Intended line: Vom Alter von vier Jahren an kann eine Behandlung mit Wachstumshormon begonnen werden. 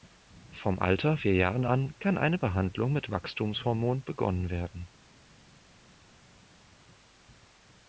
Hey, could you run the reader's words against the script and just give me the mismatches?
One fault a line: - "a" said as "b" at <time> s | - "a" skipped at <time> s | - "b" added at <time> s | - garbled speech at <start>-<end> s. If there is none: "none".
- "von" skipped at 1.2 s